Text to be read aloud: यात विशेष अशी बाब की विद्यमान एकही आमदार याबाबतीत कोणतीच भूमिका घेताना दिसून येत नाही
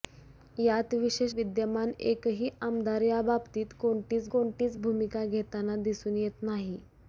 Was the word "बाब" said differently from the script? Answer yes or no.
yes